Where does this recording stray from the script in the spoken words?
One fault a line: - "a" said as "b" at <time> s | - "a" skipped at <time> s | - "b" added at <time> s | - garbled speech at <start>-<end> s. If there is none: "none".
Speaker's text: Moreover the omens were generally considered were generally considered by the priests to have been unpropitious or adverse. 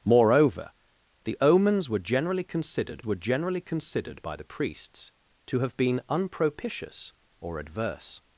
none